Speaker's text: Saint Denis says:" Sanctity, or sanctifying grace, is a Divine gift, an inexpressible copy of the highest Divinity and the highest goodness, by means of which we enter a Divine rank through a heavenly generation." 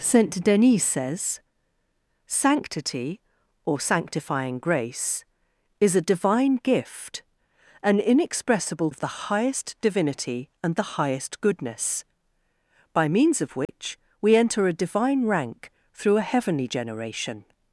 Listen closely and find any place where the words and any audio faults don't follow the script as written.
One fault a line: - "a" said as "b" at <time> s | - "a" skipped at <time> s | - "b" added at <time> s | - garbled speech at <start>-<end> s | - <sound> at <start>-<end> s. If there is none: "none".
- "copy" skipped at 8.9 s
- dropout at 13.7-13.7 s